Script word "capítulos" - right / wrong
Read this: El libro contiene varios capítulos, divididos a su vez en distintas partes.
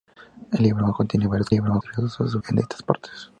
wrong